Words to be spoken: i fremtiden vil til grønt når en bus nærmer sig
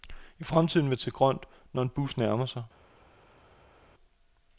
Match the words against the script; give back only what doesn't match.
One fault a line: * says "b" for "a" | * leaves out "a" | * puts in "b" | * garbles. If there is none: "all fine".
all fine